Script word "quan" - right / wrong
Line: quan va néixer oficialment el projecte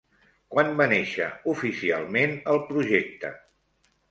right